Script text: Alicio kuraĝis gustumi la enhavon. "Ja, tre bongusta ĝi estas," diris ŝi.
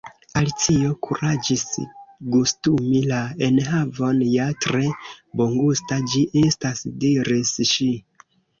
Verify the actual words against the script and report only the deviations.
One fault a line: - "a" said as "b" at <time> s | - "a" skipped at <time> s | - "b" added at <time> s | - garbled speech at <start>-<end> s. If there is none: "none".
none